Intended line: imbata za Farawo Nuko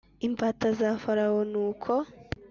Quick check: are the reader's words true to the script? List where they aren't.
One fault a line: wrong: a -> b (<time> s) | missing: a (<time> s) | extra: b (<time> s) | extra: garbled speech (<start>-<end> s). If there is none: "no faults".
no faults